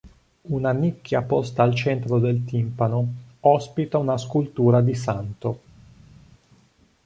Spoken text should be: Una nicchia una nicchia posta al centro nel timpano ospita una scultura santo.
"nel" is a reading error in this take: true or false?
true